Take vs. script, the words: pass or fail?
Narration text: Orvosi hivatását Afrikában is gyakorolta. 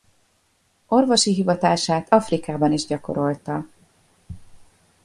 pass